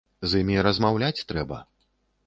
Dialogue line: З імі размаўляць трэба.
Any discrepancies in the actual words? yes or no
no